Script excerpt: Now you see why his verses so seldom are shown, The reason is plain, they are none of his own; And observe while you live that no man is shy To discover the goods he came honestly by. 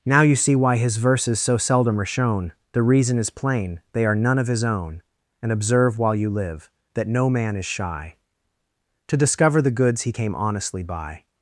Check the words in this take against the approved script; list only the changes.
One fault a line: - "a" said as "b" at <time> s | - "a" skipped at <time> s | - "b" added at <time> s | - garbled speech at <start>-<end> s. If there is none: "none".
none